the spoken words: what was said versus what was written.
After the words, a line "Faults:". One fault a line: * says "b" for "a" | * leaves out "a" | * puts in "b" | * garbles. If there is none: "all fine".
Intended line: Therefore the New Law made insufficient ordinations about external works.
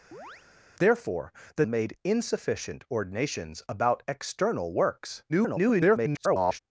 Therefore the Made insufficient ordinations about external works. [garbled]
Faults:
* leaves out "New Law"
* garbles